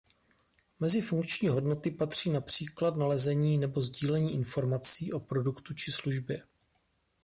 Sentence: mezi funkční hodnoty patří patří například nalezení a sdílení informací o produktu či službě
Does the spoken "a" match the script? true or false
false